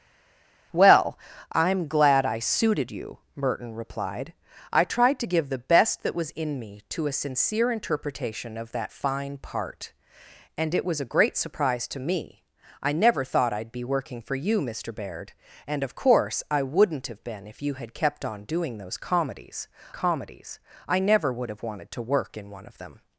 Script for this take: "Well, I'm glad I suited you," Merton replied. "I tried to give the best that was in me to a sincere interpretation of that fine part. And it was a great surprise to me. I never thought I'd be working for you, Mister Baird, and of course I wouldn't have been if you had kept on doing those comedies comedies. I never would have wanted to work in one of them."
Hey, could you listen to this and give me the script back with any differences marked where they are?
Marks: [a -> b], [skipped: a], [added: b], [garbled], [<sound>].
"Well, I'm glad I suited you," Merton replied. "I tried to give the best that was in me to a sincere interpretation of that fine part. And it was a great surprise to me. I never thought I'd be working for you, Mister Baird, and of course I wouldn't have been if you had kept on doing those comedies comedies. I never would have wanted to work in one of them."